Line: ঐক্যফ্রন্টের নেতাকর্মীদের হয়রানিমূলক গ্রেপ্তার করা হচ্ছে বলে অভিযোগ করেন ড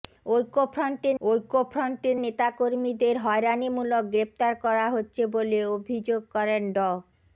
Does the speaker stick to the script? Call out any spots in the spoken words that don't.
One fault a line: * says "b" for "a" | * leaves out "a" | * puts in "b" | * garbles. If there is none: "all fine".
* puts in "ঐক্যফ্রন্টের"